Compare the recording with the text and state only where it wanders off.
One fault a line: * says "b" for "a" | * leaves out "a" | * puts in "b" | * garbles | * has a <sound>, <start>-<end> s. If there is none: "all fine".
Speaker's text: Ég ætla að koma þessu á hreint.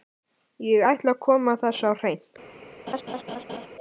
* has a laugh, 2.9-3.7 s